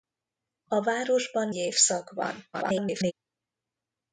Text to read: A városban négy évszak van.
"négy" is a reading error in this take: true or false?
true